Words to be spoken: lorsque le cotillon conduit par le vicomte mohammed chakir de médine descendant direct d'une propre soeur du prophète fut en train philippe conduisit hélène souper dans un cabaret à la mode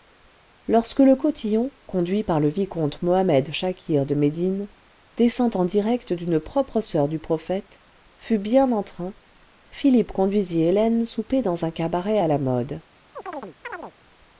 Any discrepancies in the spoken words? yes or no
yes